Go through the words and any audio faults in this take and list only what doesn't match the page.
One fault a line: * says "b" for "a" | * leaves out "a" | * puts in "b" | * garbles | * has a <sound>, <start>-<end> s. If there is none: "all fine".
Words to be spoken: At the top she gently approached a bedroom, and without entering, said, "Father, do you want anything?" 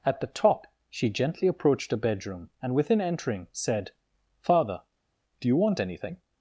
* says "within" for "without"